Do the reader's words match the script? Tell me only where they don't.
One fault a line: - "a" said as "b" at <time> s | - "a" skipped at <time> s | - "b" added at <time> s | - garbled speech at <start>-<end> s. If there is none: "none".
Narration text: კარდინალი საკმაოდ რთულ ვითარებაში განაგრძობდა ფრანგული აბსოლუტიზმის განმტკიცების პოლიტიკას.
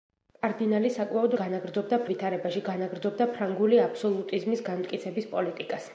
- "რთულ" said as "განაგრძობდა" at 1.4 s